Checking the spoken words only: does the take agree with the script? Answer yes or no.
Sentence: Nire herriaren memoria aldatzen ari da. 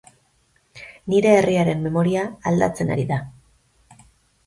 yes